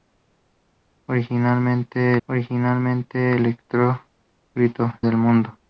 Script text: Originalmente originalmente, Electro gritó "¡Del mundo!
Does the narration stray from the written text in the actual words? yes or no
no